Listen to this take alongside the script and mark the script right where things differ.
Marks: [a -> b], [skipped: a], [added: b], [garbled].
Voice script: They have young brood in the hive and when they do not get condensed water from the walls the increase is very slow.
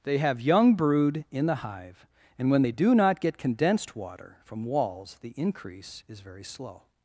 They have young brood in the hive and when they do not get condensed water from [skipped: the] walls the increase is very slow.